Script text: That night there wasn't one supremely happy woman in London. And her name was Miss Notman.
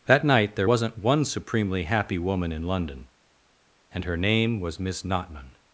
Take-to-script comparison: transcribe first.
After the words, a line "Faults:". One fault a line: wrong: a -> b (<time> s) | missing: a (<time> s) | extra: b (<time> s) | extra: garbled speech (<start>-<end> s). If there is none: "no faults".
That night there wasn't one supremely happy woman in London. And her name was Miss Notman.
Faults:
no faults